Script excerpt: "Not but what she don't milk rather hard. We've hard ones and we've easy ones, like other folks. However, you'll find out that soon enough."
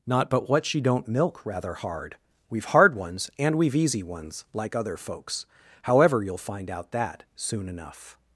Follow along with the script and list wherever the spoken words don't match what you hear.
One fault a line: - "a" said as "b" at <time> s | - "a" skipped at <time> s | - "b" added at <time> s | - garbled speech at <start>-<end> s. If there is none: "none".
none